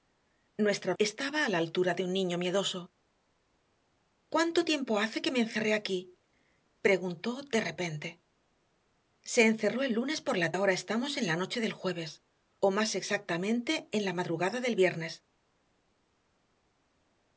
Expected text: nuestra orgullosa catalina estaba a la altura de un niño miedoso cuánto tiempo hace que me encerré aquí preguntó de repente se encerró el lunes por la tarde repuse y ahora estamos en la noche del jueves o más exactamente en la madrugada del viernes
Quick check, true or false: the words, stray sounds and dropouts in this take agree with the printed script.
false